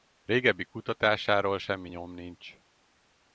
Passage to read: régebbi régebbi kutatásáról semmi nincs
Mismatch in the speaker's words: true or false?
true